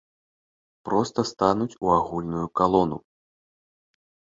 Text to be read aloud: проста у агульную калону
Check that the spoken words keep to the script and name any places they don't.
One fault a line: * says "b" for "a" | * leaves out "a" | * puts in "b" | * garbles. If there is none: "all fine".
* puts in "стануць"